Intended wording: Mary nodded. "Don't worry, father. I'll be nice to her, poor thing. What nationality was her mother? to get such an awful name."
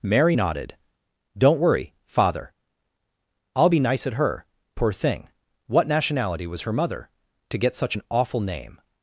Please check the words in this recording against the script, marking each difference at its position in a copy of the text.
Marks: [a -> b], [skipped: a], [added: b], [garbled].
Mary nodded. "Don't worry, father. I'll be nice [to -> at] her, poor thing. What nationality was her mother? to get such an awful name."